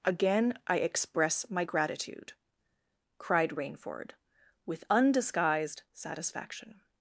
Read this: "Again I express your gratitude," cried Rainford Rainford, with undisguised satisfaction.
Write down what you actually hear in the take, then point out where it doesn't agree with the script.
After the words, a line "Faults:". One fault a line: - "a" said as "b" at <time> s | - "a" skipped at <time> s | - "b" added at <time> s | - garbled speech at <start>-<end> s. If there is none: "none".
"Again I express my gratitude," cried Rainford, with undisguised satisfaction.
Faults:
- "your" said as "my" at 1.5 s
- "Rainford" skipped at 4.1 s